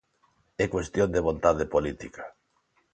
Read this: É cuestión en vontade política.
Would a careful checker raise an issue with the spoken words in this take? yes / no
yes